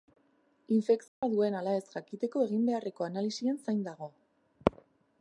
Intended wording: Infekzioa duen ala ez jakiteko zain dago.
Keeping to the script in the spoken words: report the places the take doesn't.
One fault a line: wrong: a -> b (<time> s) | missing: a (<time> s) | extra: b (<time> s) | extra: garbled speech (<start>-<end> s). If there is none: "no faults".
extra: egin beharreko analisien (2.5 s)